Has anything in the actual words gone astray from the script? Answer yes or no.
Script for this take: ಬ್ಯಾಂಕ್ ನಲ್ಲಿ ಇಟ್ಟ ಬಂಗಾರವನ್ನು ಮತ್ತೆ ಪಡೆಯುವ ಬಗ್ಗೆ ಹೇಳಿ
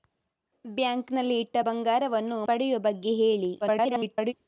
yes